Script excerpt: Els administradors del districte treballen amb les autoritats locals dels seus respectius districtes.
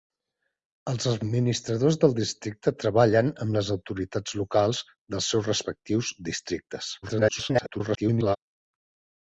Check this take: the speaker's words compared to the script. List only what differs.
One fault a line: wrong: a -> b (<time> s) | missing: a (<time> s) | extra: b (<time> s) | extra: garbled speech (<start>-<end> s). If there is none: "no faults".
extra: garbled speech (7.0-8.4 s)